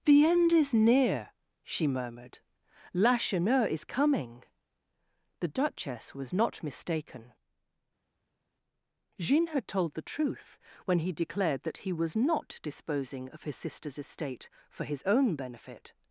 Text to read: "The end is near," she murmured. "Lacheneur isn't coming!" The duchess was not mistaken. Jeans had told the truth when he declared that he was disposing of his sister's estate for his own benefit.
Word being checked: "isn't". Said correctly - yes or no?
no